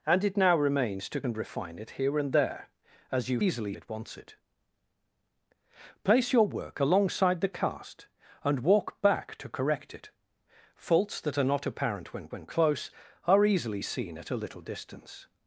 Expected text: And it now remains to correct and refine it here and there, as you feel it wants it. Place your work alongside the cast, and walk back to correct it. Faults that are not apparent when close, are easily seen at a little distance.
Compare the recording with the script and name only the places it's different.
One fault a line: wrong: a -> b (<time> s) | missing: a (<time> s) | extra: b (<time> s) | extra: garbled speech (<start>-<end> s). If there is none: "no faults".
missing: correct (1.2 s)
wrong: feel -> easily (3.4 s)
extra: when (12.3 s)